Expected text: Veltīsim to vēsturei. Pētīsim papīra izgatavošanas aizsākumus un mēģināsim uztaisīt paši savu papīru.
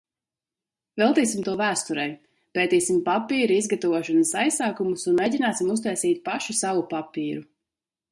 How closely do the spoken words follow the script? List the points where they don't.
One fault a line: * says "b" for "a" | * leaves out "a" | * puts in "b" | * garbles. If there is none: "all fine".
all fine